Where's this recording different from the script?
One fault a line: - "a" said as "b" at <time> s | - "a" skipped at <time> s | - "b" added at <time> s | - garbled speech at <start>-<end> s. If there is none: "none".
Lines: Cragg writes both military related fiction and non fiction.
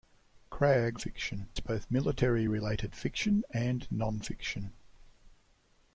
- "writes" said as "fiction" at 0.9 s